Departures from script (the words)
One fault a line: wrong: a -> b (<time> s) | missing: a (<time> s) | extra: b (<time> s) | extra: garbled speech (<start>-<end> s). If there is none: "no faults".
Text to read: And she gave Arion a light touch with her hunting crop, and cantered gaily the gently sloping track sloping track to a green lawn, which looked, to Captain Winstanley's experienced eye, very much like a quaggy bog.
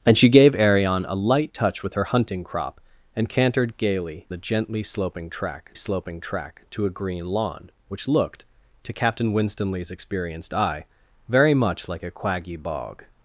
no faults